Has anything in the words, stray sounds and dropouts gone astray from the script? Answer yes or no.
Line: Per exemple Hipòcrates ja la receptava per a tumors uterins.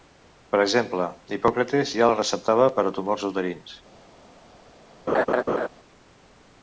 yes